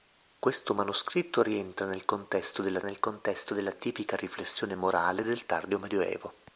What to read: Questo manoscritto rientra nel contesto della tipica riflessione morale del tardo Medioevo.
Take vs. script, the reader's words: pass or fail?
fail